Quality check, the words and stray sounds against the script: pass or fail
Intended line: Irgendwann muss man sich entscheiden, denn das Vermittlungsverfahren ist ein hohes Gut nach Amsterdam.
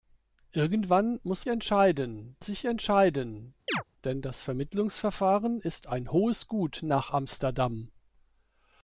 fail